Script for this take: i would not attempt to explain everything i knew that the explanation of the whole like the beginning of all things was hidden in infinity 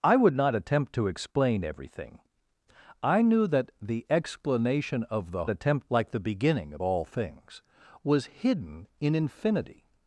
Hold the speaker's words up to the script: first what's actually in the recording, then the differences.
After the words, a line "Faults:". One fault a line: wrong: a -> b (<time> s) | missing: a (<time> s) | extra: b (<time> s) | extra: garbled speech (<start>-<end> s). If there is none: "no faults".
i would not attempt to explain everything i knew that the explanation of the attempt like the beginning of all things was hidden in infinity
Faults:
wrong: whole -> attempt (5.5 s)